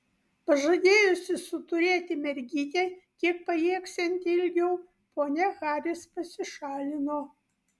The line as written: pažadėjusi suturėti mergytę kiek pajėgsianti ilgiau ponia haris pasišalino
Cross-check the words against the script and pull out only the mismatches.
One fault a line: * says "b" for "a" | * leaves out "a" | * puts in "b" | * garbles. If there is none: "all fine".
all fine